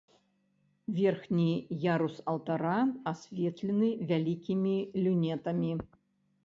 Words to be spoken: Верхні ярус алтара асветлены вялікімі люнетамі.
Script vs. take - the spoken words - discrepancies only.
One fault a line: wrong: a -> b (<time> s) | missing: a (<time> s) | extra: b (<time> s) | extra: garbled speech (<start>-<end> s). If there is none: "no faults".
no faults